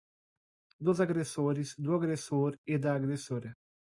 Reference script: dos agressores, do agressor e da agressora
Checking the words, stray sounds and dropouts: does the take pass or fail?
pass